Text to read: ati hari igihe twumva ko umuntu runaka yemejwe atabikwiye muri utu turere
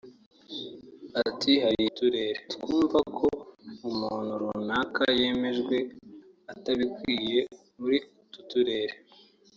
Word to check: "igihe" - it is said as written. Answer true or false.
false